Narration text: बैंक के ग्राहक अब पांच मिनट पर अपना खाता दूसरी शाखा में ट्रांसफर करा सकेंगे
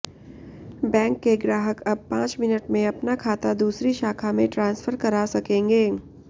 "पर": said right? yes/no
no